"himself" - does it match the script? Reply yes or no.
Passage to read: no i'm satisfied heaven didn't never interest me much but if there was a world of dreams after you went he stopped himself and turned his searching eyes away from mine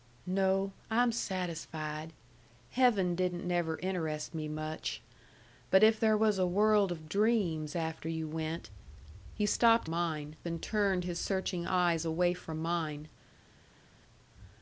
no